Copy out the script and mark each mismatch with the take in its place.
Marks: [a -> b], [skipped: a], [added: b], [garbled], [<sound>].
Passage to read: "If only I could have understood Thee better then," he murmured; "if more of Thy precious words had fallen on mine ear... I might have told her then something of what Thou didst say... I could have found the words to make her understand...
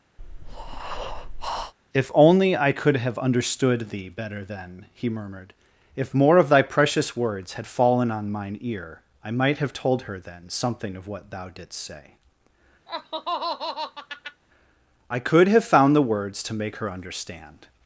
[breath] "If only I could have understood Thee better then," he murmured; "if more of Thy precious words had fallen on mine ear... I might have told her then something of what Thou didst say... [laugh] I could have found the words to make her understand...